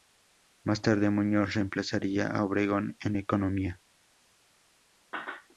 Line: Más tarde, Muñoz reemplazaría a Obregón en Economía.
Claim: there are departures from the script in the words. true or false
false